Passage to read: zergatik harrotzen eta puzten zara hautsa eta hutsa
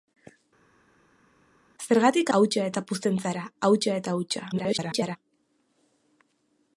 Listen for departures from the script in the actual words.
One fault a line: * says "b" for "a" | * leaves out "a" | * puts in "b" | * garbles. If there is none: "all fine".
* says "hautsa" for "harrotzen"
* garbles